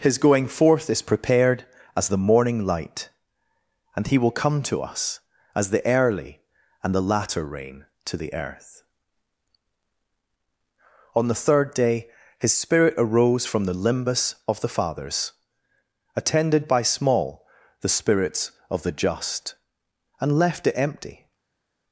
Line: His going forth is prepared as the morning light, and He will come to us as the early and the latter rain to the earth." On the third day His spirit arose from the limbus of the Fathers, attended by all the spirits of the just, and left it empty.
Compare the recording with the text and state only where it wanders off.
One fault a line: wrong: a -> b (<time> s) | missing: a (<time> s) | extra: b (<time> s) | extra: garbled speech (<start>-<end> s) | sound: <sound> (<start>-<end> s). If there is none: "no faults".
wrong: all -> small (16.8 s)